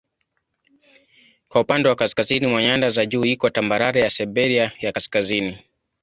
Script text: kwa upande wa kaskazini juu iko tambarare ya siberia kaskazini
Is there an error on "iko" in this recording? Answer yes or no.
no